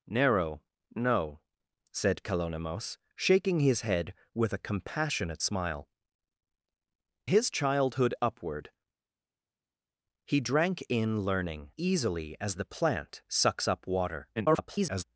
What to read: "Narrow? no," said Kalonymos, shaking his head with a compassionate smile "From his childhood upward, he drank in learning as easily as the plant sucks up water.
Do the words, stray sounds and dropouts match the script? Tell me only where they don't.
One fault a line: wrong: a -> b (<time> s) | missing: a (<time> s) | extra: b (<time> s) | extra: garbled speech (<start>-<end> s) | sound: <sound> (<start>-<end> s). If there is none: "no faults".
missing: From (5.9 s)
missing: as (11.7 s)
extra: garbled speech (14.4-15.0 s)